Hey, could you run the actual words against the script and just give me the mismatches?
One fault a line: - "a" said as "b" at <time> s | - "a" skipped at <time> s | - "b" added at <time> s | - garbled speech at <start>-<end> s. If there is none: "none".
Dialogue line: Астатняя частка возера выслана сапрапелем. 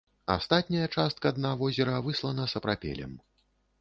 - "дна" added at 1.4 s